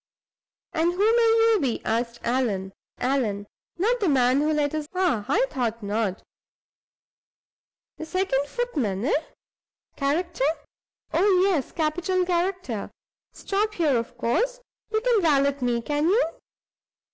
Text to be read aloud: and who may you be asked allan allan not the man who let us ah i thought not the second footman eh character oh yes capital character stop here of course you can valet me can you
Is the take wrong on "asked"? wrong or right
right